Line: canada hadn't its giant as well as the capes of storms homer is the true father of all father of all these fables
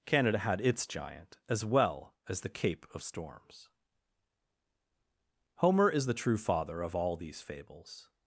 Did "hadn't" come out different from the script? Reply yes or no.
yes